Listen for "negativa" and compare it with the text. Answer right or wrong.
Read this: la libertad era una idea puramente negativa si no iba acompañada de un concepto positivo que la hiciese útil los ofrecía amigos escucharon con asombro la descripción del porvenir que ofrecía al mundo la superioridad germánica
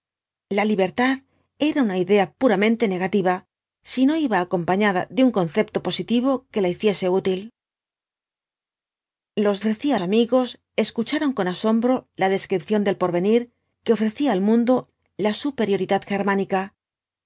right